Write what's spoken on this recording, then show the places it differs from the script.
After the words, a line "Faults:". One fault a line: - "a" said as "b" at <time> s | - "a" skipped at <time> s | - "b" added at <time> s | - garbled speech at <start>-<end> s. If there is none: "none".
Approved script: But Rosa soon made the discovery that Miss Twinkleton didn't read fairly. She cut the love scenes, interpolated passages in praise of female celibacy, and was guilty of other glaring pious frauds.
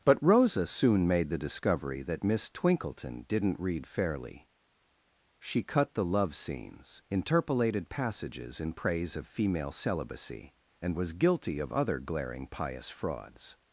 But Rosa soon made the discovery that Miss Twinkleton didn't read fairly. She cut the love scenes, interpolated passages in praise of female celibacy, and was guilty of other glaring pious frauds.
Faults:
none